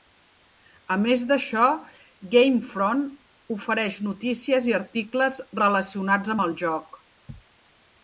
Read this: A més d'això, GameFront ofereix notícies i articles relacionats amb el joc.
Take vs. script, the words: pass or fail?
pass